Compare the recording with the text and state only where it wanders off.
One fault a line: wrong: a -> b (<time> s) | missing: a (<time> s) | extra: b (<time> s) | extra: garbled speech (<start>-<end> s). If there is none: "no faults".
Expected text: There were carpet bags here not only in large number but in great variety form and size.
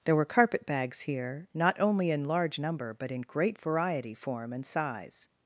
no faults